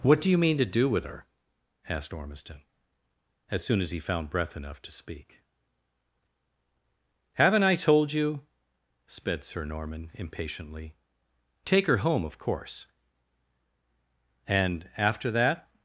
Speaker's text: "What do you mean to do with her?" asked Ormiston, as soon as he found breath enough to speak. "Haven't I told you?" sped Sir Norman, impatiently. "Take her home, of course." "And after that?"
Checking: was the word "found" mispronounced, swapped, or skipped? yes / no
no